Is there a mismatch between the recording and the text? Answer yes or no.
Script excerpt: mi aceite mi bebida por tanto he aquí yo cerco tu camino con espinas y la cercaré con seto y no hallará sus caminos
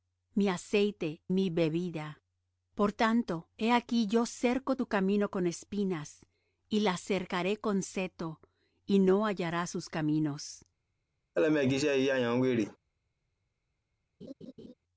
no